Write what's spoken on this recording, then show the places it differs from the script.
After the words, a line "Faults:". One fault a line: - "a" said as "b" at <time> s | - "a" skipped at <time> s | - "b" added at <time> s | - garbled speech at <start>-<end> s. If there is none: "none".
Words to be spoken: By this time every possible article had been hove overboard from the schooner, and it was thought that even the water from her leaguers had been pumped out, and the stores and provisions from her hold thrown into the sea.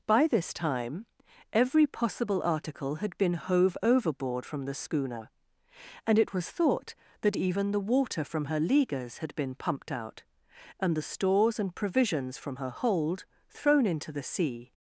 By this time every possible article had been hove overboard from the schooner, and it was thought that even the water from her leaguers had been pumped out, and the stores and provisions from her hold thrown into the sea.
Faults:
none